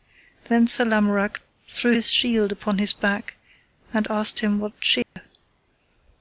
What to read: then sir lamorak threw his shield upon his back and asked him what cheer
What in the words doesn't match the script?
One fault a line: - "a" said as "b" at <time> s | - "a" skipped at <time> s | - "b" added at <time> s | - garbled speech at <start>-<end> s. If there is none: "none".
none